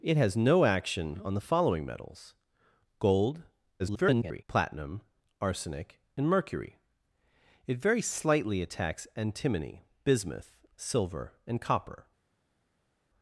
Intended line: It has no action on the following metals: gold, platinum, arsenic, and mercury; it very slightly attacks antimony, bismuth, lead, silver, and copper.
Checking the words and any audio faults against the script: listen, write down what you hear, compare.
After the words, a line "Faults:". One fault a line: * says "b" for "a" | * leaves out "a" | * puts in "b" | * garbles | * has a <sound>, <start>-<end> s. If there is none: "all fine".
It has no action on the following metals: gold, [garbled] platinum, arsenic, and mercury; it very slightly attacks antimony, bismuth, silver, and copper.
Faults:
* garbles
* leaves out "lead"